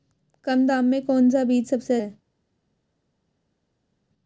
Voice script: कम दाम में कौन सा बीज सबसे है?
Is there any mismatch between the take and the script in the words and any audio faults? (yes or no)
no